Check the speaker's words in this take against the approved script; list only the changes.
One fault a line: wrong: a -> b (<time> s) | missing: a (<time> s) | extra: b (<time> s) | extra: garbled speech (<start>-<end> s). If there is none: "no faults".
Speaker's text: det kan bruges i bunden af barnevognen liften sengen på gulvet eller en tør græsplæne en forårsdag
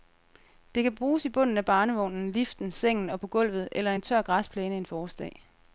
extra: og (3.1 s)